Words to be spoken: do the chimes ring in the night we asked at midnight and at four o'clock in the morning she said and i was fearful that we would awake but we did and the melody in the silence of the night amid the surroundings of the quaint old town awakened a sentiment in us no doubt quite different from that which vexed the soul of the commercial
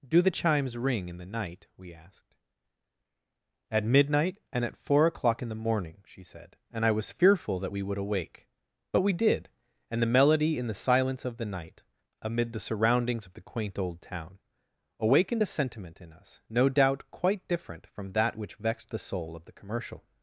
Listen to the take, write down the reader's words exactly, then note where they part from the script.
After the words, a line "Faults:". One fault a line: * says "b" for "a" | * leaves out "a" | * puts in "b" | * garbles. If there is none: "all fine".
do the chimes ring in the night we asked at midnight and at four o'clock in the morning she said and i was fearful that we would awake but we did and the melody in the silence of the night amid the surroundings of the quaint old town awakened a sentiment in us no doubt quite different from that which vexed the soul of the commercial
Faults:
all fine